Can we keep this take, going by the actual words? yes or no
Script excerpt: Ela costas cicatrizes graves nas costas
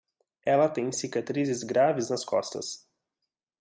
no